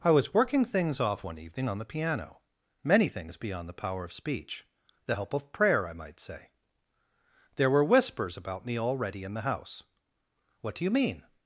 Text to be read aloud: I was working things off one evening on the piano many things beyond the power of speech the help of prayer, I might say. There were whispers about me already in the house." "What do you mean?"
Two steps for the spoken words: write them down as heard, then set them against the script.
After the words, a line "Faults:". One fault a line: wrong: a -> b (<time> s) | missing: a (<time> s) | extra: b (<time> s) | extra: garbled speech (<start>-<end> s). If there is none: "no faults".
I was working things off one evening on the piano many things beyond the power of speech the help of prayer, I might say. There were whispers about me already in the house." "What do you mean?"
Faults:
no faults